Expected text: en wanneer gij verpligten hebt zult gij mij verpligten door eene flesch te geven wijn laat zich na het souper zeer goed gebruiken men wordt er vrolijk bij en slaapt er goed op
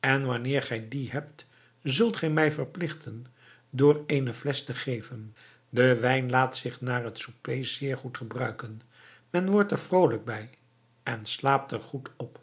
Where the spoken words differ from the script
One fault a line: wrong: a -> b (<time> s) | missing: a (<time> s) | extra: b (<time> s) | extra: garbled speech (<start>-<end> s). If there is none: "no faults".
wrong: verpligten -> die (0.9 s)
extra: de (5.7 s)